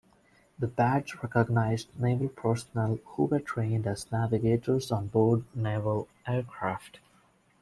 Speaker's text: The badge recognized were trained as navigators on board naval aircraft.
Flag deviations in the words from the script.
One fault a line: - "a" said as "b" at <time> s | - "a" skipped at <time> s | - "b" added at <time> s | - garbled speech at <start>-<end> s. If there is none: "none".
- "naval personnel who" added at 2.0 s